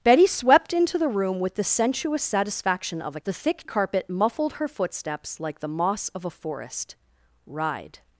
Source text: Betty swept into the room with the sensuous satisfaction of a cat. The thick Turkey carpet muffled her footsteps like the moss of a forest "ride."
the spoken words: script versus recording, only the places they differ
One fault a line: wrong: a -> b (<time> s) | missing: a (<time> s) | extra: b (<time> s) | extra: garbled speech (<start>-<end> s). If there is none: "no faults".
missing: cat (3.2 s)
missing: Turkey (3.7 s)